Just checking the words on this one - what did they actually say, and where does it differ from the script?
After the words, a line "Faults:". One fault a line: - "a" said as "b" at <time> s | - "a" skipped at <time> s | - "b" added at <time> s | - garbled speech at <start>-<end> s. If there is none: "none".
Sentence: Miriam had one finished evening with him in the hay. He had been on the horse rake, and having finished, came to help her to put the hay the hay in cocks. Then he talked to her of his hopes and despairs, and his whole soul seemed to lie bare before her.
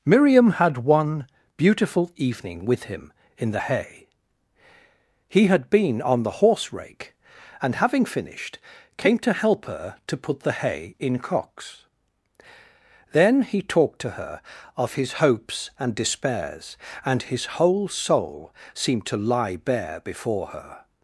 Miriam had one beautiful evening with him in the hay. He had been on the horse rake, and having finished, came to help her to put the hay in cocks. Then he talked to her of his hopes and despairs, and his whole soul seemed to lie bare before her.
Faults:
- "finished" said as "beautiful" at 1.6 s
- "the hay" skipped at 11.0 s